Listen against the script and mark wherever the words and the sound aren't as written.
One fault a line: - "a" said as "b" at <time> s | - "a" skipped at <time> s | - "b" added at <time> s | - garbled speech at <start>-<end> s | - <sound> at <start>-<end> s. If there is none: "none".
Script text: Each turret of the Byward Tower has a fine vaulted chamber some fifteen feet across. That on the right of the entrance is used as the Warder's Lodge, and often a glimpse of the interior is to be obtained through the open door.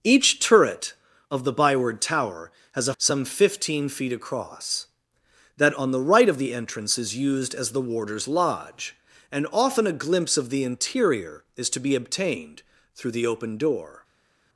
- "fine vaulted chamber" skipped at 2.9 s